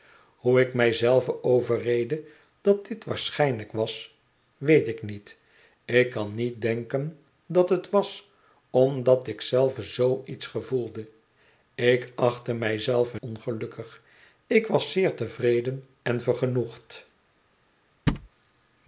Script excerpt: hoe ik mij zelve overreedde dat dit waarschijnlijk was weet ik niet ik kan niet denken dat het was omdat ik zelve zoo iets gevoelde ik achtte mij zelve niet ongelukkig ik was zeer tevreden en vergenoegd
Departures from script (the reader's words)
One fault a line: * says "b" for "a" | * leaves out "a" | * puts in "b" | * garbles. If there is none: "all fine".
* leaves out "niet"